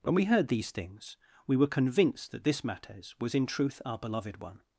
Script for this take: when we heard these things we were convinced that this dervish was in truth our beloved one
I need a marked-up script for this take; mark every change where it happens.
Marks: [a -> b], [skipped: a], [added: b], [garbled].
when we heard these things we were convinced that this [dervish -> mattes] was in truth our beloved one